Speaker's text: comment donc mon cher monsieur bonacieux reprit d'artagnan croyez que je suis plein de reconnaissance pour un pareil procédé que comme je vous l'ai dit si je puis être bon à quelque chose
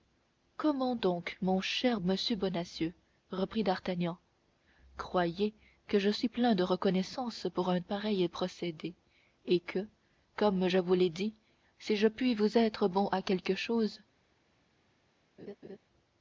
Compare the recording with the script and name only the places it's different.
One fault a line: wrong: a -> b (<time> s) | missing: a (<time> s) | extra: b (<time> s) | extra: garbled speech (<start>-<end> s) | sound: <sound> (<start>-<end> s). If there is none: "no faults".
extra: et (9.5 s)
extra: vous (12.3 s)
sound: laugh (15.4-15.8 s)